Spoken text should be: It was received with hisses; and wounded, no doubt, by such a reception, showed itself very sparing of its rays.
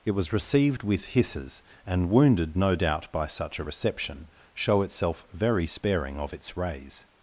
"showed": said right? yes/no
no